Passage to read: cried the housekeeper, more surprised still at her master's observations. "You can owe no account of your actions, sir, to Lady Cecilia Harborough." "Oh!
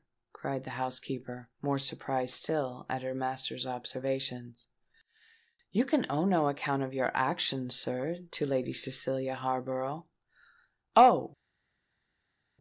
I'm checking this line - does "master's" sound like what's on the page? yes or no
yes